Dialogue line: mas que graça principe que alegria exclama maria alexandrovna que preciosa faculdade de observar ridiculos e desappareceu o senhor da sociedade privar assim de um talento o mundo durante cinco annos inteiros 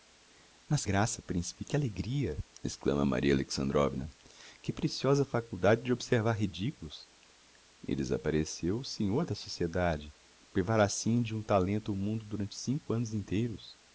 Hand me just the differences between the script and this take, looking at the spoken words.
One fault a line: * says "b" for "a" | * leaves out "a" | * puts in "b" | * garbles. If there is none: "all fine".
* leaves out "que"